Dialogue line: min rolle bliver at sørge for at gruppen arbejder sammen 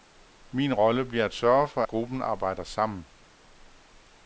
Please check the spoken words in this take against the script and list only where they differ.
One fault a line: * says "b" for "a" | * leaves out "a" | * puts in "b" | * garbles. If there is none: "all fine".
* leaves out "at"